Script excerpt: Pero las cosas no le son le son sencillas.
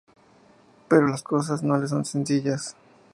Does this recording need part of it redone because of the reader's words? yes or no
yes